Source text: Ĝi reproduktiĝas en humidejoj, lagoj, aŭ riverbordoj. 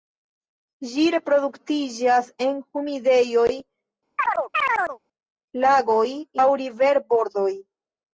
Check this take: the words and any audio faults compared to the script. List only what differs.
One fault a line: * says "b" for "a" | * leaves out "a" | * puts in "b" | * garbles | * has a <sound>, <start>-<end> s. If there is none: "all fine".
* has a chirp, 4.2-5.0 s